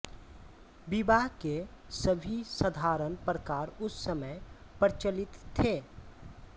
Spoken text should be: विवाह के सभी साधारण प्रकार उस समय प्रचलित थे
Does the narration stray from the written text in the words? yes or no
no